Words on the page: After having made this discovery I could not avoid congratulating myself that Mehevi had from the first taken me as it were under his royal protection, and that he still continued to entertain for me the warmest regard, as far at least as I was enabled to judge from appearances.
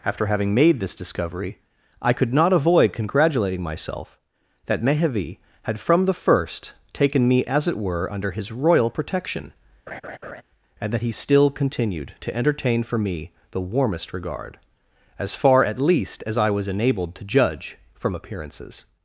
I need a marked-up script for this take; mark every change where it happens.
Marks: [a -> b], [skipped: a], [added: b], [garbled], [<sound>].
After having made this discovery I could not avoid congratulating myself that Mehevi had from the first taken me as it were under his royal protection, [laugh] and that he still continued to entertain for me the warmest regard, as far at least as I was enabled to judge from appearances.